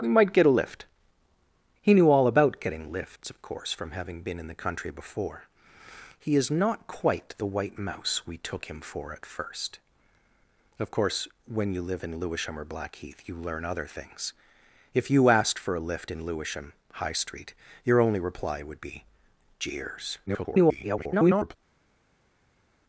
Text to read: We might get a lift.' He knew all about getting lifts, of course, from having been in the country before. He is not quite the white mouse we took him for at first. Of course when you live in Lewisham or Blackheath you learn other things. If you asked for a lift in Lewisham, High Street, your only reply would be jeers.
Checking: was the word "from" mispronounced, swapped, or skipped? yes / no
no